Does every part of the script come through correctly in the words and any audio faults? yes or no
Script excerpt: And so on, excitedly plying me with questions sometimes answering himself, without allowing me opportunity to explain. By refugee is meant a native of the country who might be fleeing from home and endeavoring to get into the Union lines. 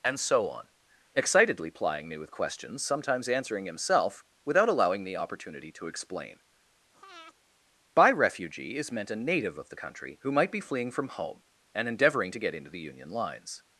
no